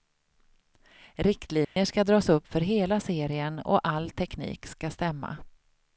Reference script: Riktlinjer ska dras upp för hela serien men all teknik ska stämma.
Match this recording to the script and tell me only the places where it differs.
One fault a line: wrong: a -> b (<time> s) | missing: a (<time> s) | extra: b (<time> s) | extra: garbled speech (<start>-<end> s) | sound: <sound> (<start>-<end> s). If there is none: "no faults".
sound: dropout (1.6-1.8 s)
wrong: men -> och (3.6 s)